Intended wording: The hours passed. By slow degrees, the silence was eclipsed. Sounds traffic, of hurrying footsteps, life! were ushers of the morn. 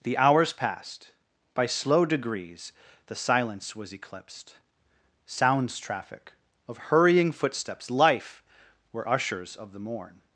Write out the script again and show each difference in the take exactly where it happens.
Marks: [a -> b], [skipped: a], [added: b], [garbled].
The hours passed. By slow degrees, the silence was eclipsed. Sounds traffic, of hurrying footsteps, life! were ushers of the morn.